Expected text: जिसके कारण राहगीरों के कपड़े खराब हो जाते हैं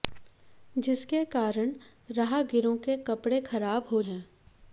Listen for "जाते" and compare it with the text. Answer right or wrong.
wrong